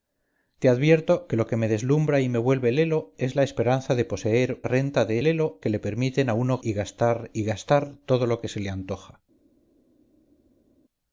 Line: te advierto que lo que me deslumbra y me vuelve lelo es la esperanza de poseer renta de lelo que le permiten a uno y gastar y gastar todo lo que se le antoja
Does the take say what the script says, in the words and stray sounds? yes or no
yes